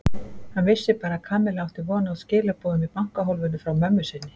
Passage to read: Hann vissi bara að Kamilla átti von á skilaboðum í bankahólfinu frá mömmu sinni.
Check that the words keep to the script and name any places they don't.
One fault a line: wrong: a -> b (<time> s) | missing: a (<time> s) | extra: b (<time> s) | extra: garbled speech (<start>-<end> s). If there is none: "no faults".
no faults